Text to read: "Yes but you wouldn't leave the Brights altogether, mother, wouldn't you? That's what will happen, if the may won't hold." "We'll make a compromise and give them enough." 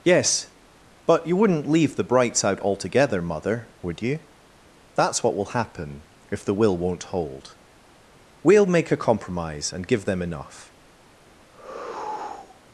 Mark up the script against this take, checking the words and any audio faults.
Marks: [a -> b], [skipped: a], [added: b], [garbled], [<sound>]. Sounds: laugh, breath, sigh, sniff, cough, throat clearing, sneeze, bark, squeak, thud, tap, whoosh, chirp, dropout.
"Yes but you wouldn't leave the Brights [added: out] altogether, mother, [wouldn't -> would] you? That's what will happen, if the [may -> will] won't hold." "We'll make a compromise and give them enough." [sigh]